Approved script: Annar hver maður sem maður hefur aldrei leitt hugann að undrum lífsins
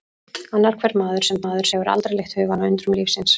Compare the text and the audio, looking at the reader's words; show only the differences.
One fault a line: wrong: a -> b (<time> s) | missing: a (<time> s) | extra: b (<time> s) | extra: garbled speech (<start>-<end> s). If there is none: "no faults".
no faults